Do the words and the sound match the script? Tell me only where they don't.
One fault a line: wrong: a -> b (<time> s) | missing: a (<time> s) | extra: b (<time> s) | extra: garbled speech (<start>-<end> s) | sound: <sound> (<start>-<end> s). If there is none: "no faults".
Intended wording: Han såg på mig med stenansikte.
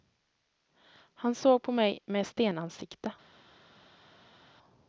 no faults